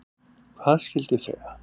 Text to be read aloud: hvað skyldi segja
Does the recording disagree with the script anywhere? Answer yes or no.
no